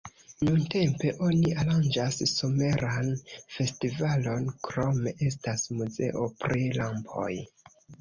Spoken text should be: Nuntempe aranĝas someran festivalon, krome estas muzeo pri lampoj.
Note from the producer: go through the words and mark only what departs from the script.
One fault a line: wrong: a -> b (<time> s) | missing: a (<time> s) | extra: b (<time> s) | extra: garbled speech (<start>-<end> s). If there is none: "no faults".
extra: oni (1.3 s)